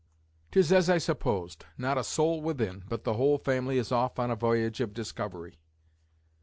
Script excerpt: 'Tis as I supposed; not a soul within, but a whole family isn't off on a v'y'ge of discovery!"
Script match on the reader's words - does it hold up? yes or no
no